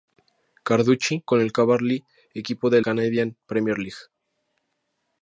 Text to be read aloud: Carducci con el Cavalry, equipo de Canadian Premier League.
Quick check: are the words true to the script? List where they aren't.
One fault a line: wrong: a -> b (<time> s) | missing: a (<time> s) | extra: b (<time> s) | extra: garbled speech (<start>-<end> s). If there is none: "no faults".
no faults